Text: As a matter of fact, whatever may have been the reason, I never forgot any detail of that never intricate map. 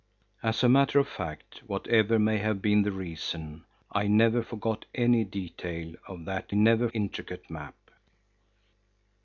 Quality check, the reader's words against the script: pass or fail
pass